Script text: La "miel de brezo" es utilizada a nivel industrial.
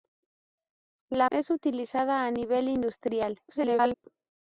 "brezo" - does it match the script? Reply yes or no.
no